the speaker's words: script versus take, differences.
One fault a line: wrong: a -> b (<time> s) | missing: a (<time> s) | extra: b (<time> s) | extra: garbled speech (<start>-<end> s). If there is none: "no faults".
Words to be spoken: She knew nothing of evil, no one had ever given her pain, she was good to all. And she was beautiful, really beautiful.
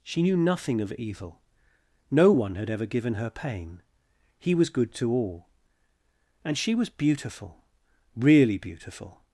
wrong: she -> he (4.4 s)